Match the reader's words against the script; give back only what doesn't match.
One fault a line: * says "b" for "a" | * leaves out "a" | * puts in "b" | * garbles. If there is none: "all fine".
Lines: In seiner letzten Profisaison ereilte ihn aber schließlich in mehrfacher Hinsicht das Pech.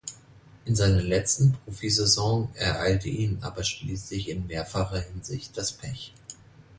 all fine